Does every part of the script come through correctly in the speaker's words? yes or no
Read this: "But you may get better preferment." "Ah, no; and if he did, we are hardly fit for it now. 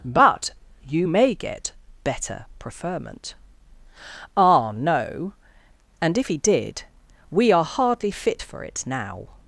yes